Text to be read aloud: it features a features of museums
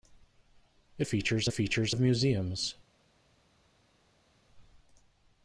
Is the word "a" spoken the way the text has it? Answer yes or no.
yes